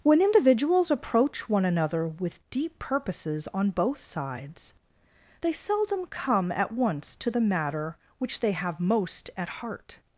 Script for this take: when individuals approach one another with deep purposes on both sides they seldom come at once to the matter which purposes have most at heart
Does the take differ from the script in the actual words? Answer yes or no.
yes